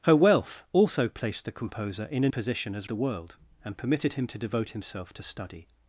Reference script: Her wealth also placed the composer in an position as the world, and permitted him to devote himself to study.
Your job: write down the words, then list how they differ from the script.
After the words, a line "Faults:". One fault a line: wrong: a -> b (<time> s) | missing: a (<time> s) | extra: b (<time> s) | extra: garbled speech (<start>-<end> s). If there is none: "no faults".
Her wealth also placed the composer in an position as the world, and permitted him to devote himself to study.
Faults:
no faults